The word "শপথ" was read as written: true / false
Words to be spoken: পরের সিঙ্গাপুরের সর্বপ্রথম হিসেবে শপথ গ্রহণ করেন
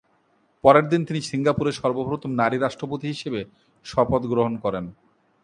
true